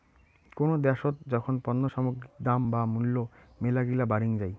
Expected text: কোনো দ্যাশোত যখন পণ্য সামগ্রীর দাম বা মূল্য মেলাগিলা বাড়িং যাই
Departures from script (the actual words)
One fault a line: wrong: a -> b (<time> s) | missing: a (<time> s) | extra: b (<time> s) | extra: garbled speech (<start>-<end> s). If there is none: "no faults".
no faults